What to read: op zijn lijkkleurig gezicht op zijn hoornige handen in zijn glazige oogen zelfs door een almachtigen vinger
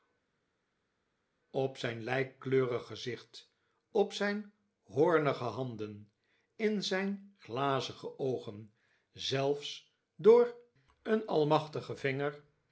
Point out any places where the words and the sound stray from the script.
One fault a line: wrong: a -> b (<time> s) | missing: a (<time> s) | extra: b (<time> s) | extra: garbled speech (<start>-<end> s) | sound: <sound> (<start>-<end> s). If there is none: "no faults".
no faults